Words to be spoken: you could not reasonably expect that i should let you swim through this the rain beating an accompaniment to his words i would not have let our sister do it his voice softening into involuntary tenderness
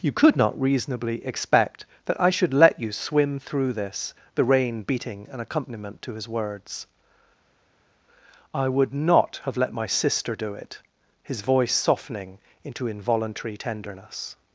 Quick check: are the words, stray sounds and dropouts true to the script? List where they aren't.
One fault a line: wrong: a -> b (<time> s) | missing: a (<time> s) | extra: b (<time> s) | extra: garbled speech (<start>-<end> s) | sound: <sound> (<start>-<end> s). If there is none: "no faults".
wrong: our -> my (9.7 s)